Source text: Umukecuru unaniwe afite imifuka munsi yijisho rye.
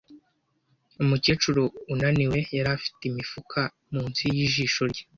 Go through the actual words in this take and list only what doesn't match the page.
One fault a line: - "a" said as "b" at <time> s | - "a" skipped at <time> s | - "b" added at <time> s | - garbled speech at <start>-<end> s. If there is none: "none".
- "yari" added at 2.6 s